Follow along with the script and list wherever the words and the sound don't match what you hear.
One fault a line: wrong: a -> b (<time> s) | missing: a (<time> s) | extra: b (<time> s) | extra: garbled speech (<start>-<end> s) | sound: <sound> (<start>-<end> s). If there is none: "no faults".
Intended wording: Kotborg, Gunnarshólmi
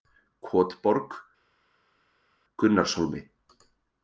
no faults